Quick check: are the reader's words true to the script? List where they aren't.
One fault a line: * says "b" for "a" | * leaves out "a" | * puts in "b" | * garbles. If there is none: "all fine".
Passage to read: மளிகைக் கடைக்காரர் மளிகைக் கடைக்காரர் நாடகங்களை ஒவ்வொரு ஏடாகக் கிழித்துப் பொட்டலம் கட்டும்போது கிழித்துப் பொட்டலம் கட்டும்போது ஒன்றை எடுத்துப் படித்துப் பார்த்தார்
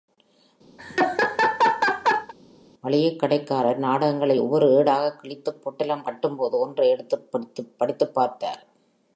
* leaves out "மளிகைக் கடைக்காரர்"
* leaves out "கிழித்துப் பொட்டலம் கட்டும்போது"